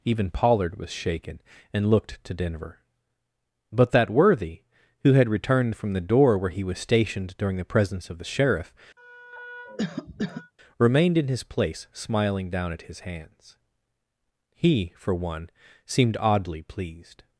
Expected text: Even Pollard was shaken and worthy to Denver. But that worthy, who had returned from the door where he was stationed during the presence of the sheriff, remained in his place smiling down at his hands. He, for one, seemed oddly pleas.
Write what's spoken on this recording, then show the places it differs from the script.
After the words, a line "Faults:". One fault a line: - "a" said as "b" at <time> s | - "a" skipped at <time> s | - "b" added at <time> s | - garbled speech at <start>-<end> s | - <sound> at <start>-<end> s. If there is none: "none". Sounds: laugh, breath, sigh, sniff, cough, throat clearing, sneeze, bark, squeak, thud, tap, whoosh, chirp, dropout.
Even Pollard was shaken and looked to Denver. But that worthy, who had returned from the door where he was stationed during the presence of the sheriff, remained in his place smiling down at his hands. He, for one, seemed oddly pleased.
Faults:
- "worthy" said as "looked" at 1.9 s
- cough at 9.0-10.5 s
- "pleas" said as "pleased" at 16.6 s